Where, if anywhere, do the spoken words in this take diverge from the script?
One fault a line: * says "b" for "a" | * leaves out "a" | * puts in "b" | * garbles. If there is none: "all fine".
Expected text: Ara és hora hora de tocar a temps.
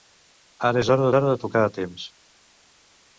all fine